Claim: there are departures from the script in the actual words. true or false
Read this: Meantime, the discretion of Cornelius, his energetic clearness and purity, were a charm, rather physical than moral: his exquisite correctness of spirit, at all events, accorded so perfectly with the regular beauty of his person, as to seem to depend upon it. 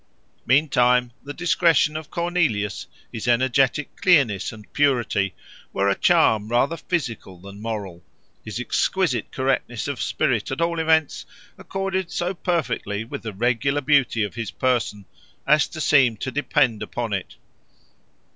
false